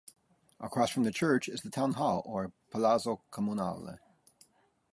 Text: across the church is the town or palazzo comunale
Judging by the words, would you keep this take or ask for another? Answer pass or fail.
fail